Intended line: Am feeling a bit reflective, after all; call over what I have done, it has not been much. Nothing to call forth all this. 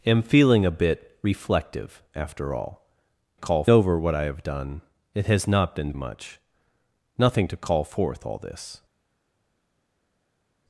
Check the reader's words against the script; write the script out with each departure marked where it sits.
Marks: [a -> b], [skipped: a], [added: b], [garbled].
Am feeling a bit reflective, after all; call over what I have done, it has not been much. Nothing to call forth all this.